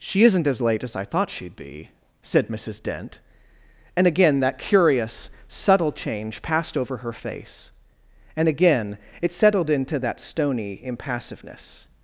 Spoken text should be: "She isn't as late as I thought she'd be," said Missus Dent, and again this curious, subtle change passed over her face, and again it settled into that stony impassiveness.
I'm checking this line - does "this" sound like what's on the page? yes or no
no